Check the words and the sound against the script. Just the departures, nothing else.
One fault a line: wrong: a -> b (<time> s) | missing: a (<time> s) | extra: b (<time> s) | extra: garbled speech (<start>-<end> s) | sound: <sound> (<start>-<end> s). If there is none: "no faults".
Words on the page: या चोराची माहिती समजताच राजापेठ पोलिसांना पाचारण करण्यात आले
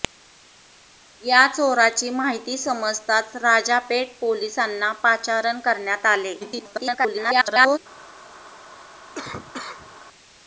extra: garbled speech (6.4-7.8 s)
sound: cough (9.2-10.0 s)